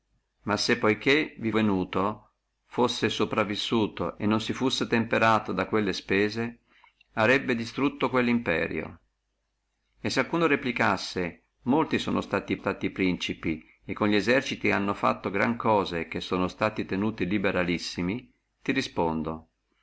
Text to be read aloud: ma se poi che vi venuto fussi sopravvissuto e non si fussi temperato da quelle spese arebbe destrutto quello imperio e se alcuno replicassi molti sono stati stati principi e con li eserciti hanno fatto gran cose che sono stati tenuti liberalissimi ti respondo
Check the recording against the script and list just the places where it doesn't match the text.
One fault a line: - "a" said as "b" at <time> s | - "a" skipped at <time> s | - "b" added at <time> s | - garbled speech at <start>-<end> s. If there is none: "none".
none